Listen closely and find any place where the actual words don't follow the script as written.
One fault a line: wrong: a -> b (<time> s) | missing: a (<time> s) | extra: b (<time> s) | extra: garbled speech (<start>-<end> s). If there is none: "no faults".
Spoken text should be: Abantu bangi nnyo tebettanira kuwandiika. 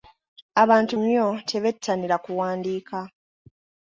missing: bangi (0.9 s)